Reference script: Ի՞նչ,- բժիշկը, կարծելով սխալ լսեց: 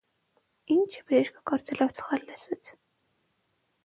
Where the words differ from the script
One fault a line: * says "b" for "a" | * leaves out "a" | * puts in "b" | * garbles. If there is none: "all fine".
all fine